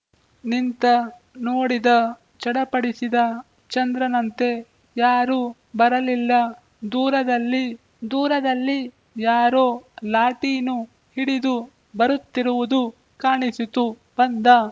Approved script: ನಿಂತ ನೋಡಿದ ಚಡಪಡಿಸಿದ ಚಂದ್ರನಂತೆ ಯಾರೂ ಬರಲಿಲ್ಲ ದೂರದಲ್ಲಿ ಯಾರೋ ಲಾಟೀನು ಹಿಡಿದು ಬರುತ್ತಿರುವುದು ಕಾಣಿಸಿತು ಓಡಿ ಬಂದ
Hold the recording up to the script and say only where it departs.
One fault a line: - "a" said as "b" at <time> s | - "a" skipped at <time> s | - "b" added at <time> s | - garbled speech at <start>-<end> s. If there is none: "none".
- "ದೂರದಲ್ಲಿ" added at 8.1 s
- "ಓಡಿ" skipped at 13.8 s